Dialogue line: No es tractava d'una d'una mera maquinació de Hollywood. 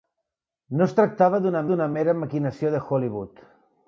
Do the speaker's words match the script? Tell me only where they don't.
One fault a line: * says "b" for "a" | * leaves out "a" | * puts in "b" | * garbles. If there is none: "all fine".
all fine